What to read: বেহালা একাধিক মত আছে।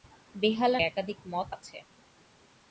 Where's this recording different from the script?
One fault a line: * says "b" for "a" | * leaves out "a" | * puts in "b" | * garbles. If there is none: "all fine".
all fine